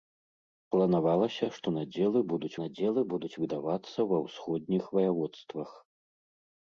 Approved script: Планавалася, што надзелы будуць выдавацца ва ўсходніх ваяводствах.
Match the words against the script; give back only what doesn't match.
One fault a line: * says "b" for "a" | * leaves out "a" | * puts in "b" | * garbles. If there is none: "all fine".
* puts in "надзелы будуць"